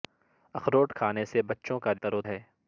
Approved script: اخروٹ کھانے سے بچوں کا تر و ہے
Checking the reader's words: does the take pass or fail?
pass